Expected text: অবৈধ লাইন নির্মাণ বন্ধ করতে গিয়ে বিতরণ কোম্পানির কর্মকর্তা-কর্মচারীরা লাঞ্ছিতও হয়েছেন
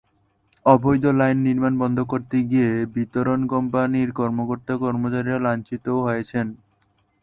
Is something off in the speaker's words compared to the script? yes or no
no